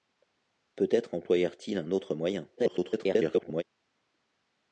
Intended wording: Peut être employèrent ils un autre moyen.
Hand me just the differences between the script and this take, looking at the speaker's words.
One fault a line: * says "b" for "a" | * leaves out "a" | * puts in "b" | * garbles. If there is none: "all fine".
* garbles